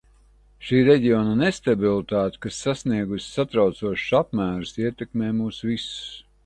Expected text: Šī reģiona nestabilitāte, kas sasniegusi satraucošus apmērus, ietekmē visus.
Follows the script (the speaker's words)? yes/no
no